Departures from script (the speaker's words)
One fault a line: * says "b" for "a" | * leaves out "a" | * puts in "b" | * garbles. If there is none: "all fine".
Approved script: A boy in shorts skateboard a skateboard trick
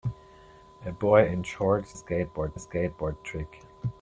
all fine